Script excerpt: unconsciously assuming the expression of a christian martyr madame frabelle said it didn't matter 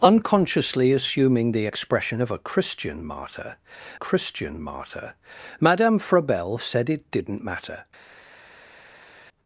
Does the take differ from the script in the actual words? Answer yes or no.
yes